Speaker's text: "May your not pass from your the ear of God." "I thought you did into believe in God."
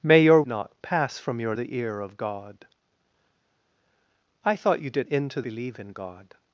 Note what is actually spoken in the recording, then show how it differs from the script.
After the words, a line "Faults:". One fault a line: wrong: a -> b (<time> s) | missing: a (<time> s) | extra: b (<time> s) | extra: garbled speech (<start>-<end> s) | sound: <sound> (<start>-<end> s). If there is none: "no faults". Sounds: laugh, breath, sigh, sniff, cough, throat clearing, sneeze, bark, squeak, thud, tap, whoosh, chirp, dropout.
"May your not pass from your the ear of God." "I thought you did into believe in God."
Faults:
no faults